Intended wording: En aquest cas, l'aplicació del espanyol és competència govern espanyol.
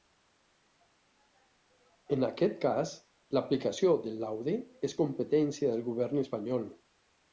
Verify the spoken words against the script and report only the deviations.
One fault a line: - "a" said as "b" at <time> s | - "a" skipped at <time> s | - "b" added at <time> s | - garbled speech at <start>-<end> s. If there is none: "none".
- "espanyol" said as "laude" at 4.2 s
- "del" added at 5.7 s